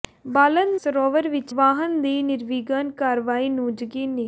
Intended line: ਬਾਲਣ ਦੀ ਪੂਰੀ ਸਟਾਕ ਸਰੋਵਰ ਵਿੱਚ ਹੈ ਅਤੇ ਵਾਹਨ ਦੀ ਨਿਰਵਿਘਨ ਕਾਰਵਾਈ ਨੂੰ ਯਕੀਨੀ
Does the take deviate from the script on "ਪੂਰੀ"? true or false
true